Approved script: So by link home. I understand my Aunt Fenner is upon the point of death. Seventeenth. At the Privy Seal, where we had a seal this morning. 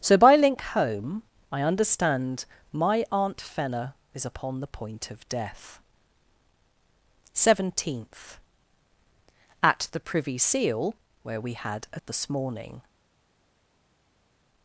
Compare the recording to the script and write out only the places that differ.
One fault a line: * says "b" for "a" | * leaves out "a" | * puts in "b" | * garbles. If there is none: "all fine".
* leaves out "seal"